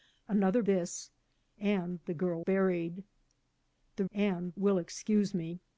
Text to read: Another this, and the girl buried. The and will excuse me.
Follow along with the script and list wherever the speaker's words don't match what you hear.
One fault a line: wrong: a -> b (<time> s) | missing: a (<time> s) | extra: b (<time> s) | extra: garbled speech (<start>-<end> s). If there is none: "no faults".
no faults